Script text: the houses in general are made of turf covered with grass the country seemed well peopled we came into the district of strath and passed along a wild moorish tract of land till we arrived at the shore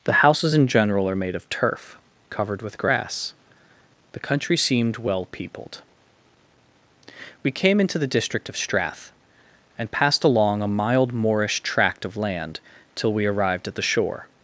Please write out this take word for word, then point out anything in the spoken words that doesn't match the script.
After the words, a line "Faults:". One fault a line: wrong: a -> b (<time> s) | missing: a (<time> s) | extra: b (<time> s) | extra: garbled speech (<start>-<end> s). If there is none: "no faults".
the houses in general are made of turf covered with grass the country seemed well peopled we came into the district of strath and passed along a mild moorish tract of land till we arrived at the shore
Faults:
wrong: wild -> mild (10.7 s)